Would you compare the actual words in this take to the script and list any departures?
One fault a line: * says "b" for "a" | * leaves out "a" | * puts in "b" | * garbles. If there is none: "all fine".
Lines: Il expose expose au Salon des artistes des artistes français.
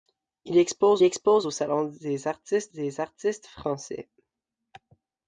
all fine